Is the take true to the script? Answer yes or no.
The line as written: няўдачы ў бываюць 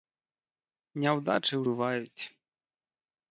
yes